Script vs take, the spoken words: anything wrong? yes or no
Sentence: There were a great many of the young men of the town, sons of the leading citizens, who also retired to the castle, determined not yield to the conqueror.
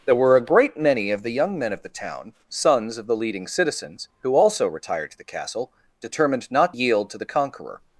no